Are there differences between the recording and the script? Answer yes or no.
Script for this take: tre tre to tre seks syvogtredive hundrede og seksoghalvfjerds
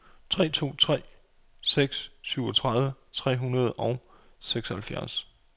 yes